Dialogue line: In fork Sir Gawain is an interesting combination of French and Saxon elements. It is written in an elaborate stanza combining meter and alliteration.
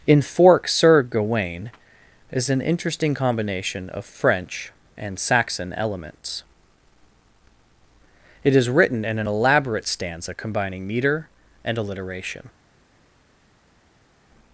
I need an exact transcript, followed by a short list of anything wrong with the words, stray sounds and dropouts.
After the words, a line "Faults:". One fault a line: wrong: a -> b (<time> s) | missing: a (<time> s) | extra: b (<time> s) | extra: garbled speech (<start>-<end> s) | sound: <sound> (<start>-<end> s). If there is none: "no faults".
In fork Sir Gawain is an interesting combination of French and Saxon elements. It is written in an elaborate stanza combining meter and alliteration.
Faults:
no faults